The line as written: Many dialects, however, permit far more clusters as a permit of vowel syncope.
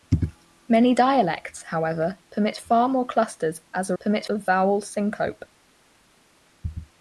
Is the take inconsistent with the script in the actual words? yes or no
no